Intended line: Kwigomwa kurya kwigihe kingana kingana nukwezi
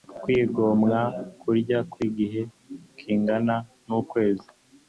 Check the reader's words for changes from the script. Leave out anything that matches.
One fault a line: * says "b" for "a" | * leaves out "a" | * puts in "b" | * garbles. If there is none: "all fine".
* leaves out "kingana"